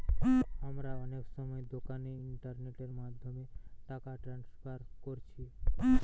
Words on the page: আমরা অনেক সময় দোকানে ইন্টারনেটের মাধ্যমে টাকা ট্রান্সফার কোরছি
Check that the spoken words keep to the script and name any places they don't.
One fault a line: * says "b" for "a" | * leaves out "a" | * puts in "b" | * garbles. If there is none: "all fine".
all fine